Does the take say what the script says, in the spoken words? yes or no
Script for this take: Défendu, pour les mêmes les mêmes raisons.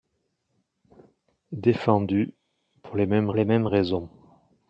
yes